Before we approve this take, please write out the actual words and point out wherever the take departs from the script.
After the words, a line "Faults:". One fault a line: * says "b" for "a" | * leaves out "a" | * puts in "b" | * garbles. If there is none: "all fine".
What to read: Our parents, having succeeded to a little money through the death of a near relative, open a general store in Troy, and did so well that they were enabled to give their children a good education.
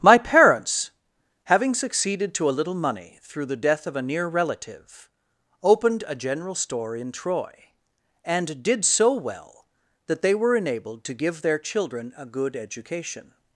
My parents, having succeeded to a little money through the death of a near relative, opened a general store in Troy, and did so well that they were enabled to give their children a good education.
Faults:
* says "My" for "Our"
* says "opened" for "open"